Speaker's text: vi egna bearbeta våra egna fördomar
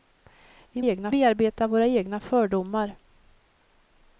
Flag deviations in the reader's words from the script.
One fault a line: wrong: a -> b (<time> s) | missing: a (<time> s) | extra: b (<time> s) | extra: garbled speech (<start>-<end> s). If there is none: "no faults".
no faults